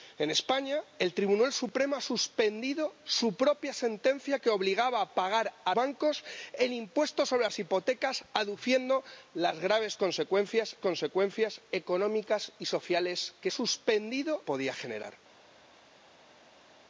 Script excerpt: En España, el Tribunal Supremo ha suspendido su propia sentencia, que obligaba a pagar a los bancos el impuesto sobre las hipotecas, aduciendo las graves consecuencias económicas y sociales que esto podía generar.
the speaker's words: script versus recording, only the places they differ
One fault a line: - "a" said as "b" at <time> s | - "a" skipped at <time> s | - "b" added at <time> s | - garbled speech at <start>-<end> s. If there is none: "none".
- "los" skipped at 5.8 s
- "consecuencias" added at 10.8 s
- "esto" said as "suspendido" at 13.5 s